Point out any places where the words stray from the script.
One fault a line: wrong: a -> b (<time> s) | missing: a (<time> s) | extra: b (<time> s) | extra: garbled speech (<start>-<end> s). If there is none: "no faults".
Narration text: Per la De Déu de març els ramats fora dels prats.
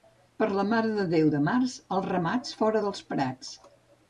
extra: Mare (0.7 s)